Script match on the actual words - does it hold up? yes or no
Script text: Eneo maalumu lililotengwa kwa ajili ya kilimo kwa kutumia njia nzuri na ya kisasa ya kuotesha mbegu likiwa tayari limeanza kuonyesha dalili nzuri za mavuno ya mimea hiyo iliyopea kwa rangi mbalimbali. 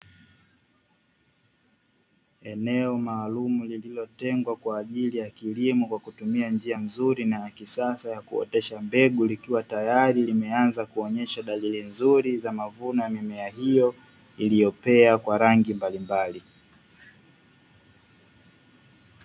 yes